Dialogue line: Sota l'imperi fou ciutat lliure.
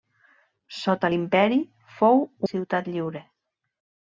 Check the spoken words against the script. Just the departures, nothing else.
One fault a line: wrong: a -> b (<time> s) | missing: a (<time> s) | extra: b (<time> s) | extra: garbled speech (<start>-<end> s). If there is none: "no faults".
no faults